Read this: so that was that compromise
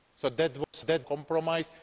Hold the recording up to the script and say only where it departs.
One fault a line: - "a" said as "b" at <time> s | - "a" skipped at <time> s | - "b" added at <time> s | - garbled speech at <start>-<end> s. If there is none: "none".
none